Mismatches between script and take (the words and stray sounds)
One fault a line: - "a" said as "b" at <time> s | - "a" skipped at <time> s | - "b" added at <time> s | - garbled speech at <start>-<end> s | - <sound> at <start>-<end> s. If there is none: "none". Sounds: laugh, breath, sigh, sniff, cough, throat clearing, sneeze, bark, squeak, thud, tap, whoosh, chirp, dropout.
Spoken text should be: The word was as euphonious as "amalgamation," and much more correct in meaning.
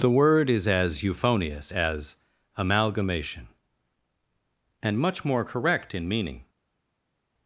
- "was" said as "is" at 0.5 s